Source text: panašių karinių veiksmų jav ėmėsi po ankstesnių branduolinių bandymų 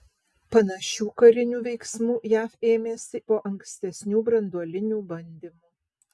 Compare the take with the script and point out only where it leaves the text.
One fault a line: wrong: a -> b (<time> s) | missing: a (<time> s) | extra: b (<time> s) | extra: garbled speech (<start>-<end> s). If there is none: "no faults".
no faults